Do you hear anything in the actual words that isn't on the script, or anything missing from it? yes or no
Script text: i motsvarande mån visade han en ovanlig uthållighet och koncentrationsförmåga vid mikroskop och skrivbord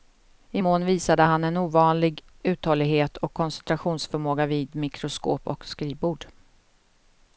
yes